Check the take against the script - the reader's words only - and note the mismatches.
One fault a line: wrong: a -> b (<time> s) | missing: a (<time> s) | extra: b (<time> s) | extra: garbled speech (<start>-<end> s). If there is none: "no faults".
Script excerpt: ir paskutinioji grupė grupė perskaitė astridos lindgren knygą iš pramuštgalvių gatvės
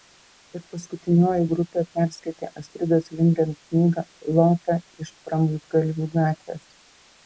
missing: grupė (1.8 s)
extra: lota (4.4 s)